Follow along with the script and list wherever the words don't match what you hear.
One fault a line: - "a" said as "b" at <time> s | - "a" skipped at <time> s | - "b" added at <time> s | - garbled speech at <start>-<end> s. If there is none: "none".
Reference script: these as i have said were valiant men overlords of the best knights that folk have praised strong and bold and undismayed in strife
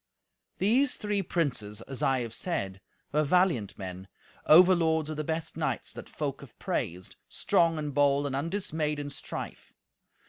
- "three princes" added at 0.9 s